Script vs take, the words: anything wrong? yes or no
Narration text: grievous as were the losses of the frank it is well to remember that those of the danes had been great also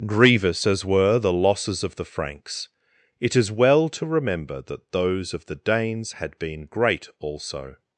yes